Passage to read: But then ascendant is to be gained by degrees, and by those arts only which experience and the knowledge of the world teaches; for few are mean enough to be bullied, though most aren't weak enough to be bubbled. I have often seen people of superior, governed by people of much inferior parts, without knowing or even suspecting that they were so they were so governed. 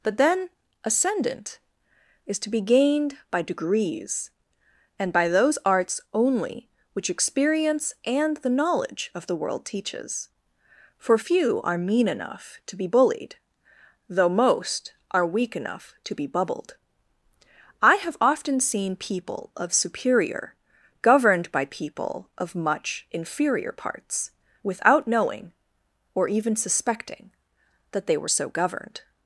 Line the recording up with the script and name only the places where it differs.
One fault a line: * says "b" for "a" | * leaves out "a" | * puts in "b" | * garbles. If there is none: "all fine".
* says "are" for "aren't"
* leaves out "they were so"